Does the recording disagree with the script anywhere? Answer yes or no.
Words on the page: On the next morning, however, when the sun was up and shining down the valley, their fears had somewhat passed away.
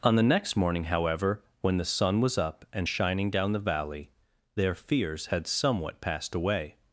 no